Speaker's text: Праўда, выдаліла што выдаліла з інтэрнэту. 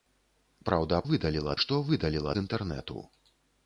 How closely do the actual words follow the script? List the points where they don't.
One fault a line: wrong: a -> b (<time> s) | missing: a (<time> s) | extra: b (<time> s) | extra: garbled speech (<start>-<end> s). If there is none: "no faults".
no faults